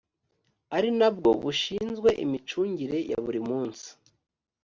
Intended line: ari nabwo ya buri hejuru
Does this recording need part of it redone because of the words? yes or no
yes